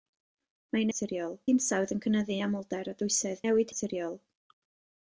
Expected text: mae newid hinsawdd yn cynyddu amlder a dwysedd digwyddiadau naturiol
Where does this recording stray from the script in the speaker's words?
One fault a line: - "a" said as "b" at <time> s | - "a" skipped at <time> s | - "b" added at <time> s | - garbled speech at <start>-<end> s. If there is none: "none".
- "newid" said as "naturiol" at 0.9 s
- "digwyddiadau" said as "newid" at 3.4 s